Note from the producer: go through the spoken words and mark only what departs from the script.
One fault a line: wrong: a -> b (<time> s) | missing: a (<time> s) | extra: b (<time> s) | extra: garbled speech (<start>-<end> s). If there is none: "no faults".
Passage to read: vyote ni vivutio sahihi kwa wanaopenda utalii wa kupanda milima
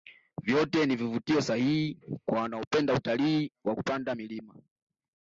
no faults